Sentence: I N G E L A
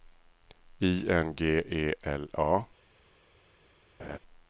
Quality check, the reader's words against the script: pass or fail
pass